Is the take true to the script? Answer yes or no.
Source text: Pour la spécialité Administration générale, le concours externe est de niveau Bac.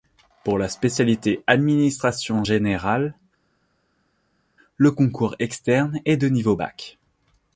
yes